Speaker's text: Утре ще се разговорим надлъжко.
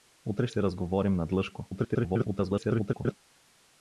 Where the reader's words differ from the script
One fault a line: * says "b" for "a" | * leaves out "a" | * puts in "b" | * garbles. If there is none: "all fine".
* leaves out "ще"
* garbles